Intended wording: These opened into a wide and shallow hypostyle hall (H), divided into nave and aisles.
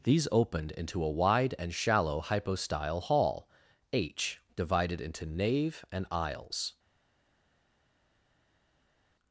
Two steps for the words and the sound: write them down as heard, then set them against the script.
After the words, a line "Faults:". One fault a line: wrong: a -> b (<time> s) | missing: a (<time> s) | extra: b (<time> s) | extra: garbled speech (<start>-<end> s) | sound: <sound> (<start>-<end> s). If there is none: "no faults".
These opened into a wide and shallow hypostyle hall (H), divided into nave and aisles.
Faults:
no faults